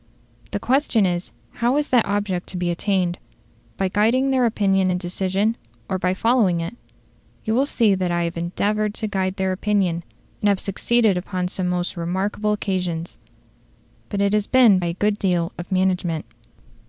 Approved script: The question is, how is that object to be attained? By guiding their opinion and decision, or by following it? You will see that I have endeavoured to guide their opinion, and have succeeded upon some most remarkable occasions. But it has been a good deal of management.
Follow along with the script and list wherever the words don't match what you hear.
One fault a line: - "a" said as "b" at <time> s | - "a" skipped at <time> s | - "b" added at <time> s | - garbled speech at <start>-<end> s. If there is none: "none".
none